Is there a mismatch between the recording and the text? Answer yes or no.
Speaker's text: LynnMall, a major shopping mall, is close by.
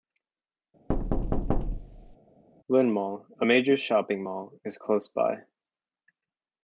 no